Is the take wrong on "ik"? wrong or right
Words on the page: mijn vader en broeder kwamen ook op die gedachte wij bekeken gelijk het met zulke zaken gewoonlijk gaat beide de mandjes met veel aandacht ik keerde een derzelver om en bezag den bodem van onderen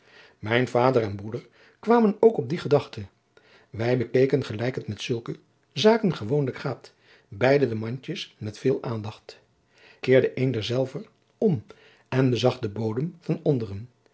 wrong